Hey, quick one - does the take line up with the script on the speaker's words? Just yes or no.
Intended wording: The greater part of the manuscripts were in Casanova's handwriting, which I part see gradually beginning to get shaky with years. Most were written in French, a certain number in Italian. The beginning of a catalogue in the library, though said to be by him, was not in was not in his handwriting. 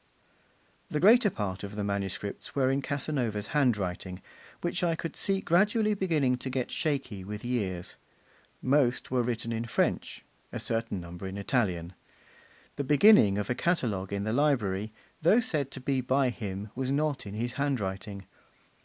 no